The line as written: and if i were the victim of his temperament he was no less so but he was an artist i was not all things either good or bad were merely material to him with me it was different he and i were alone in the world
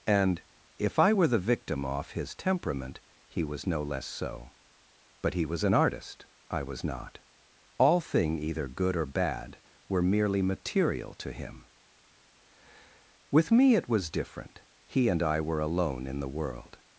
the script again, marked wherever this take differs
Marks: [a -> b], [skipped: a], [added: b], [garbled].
and if i were the victim [of -> off] his temperament he was no less so but he was an artist i was not all [things -> thing] either good or bad were merely material to him with me it was different he and i were alone in the world